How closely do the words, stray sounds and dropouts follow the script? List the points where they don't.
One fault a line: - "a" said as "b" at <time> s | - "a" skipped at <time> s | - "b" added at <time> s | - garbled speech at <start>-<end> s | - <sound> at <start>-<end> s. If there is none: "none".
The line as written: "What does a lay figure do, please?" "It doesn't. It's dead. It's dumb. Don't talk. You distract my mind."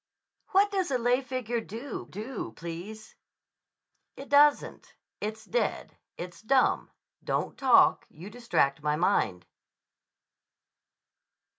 - "do" added at 2.0 s